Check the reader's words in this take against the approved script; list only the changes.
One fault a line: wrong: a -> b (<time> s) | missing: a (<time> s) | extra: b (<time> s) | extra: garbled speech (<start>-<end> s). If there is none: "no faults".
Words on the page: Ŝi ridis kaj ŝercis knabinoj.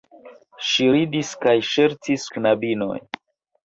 no faults